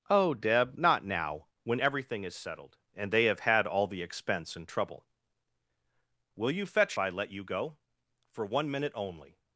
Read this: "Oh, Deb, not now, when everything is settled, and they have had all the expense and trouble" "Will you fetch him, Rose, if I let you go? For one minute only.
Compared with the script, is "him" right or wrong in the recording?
wrong